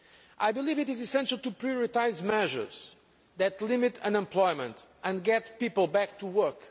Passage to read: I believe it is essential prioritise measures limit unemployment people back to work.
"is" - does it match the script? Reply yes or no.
yes